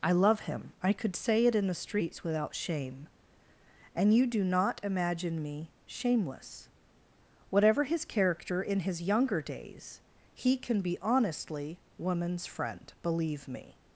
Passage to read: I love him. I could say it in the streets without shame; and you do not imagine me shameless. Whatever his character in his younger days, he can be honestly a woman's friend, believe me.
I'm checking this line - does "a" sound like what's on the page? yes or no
no